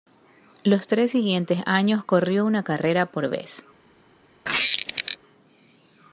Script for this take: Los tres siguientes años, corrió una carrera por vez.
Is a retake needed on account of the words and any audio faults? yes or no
yes